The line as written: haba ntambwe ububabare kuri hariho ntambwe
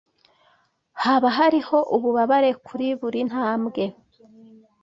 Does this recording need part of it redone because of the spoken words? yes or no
yes